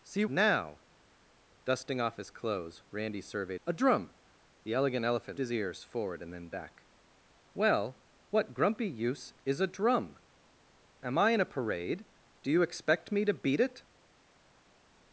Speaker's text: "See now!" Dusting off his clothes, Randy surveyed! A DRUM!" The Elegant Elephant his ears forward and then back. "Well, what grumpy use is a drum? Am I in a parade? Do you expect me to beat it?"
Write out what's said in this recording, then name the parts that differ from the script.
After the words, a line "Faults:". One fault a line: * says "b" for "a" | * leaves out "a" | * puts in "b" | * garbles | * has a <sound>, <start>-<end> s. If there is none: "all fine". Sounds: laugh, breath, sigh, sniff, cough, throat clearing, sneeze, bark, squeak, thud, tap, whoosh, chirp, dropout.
"See now!" Dusting off his clothes, Randy surveyed! A DRUM!" The Elegant Elephant his ears forward and then back. "Well, what grumpy use is a drum? Am I in a parade? Do you expect me to beat it?"
Faults:
all fine